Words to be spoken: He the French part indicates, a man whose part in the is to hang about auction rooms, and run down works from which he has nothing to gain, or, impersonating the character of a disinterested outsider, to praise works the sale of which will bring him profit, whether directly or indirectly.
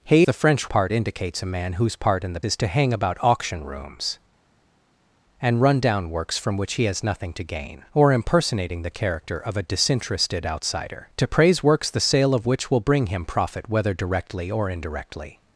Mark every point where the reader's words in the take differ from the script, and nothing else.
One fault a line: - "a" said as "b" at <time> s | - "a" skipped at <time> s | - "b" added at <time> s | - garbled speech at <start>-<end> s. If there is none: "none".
none